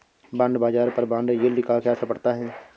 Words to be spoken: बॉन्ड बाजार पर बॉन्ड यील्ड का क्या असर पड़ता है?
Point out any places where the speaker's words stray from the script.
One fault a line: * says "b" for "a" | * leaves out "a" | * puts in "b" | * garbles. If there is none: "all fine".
all fine